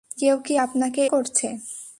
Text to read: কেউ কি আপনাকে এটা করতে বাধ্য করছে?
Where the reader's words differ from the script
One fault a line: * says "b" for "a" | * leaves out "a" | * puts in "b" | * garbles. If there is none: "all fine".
* leaves out "এটা করতে বাধ্য"